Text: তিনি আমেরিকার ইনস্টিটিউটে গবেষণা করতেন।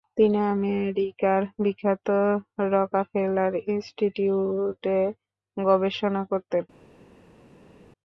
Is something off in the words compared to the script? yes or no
yes